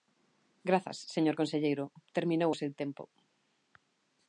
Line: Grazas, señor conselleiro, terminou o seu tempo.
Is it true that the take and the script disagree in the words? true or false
false